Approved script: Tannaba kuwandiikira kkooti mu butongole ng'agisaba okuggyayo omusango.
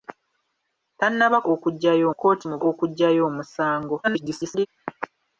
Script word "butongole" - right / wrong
wrong